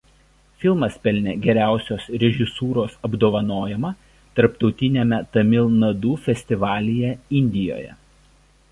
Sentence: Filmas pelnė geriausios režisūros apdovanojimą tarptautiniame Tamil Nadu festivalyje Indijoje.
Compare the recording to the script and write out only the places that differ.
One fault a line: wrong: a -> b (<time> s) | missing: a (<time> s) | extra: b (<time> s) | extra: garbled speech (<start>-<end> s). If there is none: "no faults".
no faults